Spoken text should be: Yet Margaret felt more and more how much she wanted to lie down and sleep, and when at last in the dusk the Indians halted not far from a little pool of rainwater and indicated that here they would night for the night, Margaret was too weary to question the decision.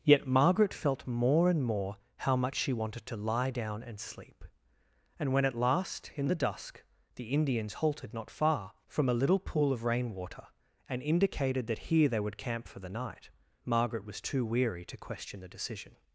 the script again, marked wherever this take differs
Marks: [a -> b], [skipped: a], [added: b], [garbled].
Yet Margaret felt more and more how much she wanted to lie down and sleep, and when at last in the dusk the Indians halted not far from a little pool of rainwater and indicated that here they would [night -> camp] for the night, Margaret was too weary to question the decision.